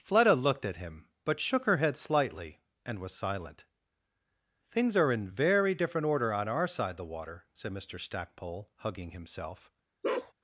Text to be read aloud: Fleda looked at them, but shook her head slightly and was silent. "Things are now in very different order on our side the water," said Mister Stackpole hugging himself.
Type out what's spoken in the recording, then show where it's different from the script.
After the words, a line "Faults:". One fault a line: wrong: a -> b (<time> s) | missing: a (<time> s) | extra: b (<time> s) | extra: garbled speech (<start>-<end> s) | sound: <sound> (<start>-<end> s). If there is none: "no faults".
Fleda looked at him, but shook her head slightly and was silent. "Things are in very different order on our side the water," said Mister Stackpole hugging himself.
Faults:
wrong: them -> him (0.8 s)
missing: now (5.1 s)
sound: bark (10.0-10.3 s)